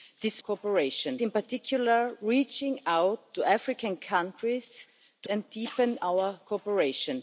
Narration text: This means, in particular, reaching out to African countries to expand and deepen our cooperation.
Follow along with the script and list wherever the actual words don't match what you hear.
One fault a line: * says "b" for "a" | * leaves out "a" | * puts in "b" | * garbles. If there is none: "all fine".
* says "cooperation" for "means"
* leaves out "expand"